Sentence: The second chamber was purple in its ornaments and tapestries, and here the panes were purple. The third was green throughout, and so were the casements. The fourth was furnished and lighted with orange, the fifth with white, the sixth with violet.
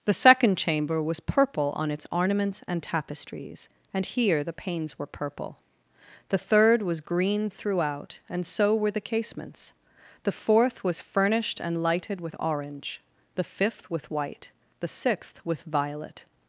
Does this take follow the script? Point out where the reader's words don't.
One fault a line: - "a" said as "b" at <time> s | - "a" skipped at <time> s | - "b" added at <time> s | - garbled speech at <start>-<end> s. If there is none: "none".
- "in" said as "on" at 1.8 s